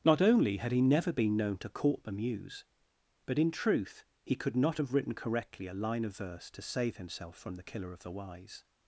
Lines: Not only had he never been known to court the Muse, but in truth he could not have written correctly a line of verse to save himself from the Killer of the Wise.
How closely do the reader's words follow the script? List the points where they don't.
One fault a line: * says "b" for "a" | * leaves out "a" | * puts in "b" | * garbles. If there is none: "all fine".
all fine